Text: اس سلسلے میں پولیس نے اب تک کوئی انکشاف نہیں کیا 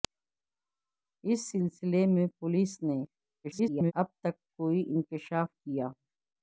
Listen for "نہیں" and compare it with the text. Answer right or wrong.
wrong